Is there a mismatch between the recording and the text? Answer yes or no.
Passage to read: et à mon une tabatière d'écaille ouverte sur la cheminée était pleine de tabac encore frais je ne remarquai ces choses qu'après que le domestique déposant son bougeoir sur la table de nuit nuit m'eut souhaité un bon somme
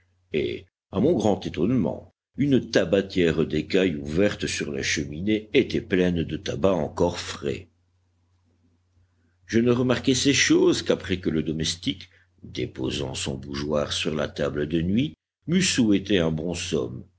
yes